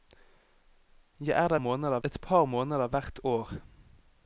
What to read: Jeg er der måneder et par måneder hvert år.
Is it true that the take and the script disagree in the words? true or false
false